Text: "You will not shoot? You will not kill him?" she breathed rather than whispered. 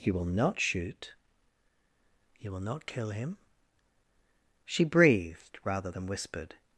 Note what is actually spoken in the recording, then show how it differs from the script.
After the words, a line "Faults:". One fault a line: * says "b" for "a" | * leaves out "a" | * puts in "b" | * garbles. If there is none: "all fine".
"You will not shoot? You will not kill him?" she breathed rather than whispered.
Faults:
all fine